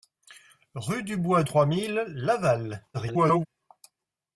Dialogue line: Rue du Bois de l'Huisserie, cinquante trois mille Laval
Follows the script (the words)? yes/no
no